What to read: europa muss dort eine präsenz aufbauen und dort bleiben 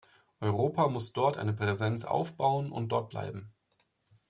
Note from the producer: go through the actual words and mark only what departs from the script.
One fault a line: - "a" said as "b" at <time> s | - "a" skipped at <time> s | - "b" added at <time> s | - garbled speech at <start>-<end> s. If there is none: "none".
none